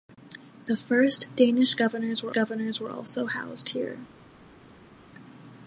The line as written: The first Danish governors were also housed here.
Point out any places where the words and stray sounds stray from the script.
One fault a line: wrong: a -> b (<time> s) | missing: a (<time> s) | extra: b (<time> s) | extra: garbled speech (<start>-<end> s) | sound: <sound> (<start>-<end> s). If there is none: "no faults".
extra: governors were (2.3 s)